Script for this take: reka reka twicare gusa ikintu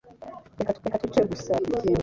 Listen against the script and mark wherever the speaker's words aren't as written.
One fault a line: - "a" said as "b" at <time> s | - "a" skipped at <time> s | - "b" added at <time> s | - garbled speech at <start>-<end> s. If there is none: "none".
none